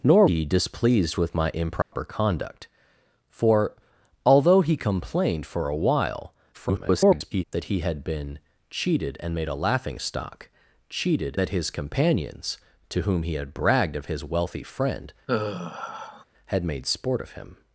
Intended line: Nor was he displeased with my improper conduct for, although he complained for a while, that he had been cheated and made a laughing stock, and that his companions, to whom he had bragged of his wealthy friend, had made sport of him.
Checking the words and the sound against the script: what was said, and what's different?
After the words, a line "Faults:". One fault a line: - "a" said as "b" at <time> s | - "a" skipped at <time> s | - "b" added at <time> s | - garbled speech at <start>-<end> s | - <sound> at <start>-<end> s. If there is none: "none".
Nor he displeased with my improper conduct for, although he complained for a while, [garbled] that he had been cheated and made a laughing stock, cheated that his companions, to whom he had bragged of his wealthy friend, had made sport of him.
Faults:
- "was" skipped at 0.3 s
- dropout at 1.8-1.9 s
- garbled speech at 6.5-7.4 s
- "and" said as "cheated" at 10.9 s
- sigh at 15.3-16.2 s